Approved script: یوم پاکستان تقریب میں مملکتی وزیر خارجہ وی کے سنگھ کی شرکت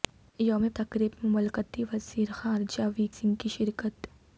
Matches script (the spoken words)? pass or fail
fail